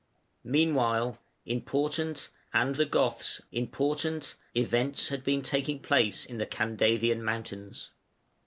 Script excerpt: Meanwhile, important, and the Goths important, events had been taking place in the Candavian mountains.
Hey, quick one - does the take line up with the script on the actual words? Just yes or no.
yes